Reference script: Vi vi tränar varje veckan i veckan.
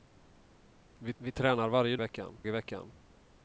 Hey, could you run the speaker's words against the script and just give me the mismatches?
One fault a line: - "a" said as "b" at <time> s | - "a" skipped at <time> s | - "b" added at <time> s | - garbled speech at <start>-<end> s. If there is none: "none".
none